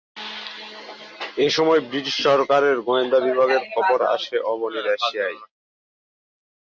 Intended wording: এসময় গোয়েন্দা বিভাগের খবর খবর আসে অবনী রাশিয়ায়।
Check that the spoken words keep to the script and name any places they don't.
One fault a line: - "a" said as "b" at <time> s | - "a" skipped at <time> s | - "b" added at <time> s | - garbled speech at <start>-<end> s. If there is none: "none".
- "ব্রিটিশ সরকারের" added at 1.9 s
- "খবর" skipped at 4.0 s